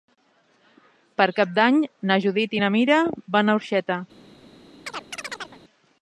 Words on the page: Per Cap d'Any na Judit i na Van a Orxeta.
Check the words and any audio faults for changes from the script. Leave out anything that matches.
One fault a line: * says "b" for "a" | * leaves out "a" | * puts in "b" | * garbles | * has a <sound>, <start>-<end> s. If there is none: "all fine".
* puts in "Mira"
* has a chirp, 4.9-5.6 s